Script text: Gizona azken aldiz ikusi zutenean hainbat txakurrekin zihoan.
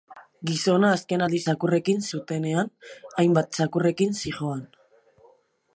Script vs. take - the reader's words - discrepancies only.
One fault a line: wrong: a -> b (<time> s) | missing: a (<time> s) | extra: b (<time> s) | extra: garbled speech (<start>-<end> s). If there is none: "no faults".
wrong: ikusi -> txakurrekin (1.5 s)